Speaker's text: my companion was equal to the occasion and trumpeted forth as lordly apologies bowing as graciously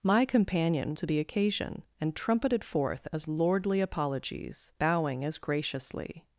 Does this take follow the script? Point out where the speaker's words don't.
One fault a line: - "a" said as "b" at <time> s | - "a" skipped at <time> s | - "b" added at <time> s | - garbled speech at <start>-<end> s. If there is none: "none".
- "was equal" skipped at 0.9 s